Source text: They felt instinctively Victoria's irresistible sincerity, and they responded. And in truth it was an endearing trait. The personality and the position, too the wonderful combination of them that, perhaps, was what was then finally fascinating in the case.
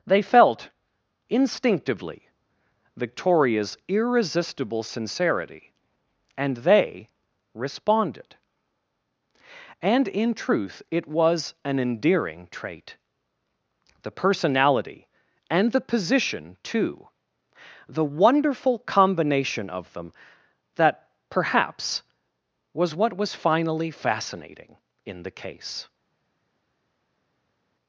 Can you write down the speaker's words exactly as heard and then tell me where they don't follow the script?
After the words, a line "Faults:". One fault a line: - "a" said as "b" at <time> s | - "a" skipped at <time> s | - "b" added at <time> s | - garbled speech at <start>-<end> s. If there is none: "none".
They felt instinctively Victoria's irresistible sincerity, and they responded. And in truth it was an endearing trait. The personality and the position, too the wonderful combination of them that, perhaps, was what was finally fascinating in the case.
Faults:
- "then" skipped at 23.3 s